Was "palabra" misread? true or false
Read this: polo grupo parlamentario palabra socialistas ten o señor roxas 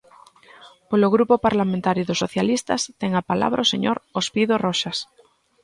true